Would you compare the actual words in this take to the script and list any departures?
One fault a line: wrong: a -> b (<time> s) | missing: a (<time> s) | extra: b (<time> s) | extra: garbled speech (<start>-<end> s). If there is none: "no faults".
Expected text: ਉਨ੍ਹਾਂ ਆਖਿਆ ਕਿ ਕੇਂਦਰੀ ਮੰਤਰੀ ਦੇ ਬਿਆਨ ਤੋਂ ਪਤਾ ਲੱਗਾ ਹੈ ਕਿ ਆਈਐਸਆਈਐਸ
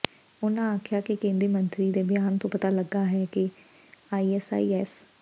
no faults